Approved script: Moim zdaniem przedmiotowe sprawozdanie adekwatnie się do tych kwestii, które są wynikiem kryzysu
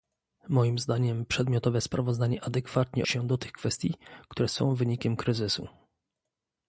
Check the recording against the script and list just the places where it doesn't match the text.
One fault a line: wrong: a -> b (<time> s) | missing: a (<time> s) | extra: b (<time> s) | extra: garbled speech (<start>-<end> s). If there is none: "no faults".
no faults